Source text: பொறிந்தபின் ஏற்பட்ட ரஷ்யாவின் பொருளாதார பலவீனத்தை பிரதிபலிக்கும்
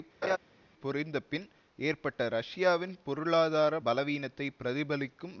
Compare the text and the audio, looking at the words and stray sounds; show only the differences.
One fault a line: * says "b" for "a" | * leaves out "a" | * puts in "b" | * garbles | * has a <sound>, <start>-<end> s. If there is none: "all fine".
* has a laugh, 0.2-0.4 s